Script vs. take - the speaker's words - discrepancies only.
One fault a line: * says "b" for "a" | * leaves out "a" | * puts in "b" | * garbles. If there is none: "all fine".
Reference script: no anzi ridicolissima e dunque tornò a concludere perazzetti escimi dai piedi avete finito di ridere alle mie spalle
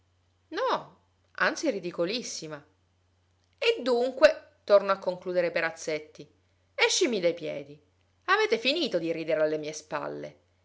all fine